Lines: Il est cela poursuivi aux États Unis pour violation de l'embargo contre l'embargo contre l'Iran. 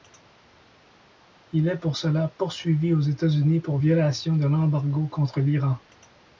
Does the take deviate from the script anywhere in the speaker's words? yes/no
yes